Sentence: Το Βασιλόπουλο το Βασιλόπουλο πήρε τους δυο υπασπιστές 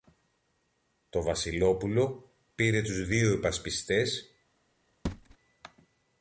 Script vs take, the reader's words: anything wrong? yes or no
yes